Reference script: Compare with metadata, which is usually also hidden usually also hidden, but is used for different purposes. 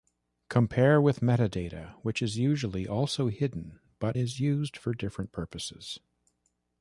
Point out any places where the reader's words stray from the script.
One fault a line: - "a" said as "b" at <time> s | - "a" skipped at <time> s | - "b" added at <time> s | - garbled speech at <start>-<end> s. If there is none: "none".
- "usually also hidden" skipped at 3.8 s